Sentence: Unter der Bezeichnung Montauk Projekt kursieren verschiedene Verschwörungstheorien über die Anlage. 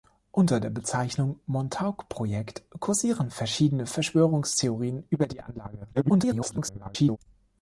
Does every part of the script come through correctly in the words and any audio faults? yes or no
no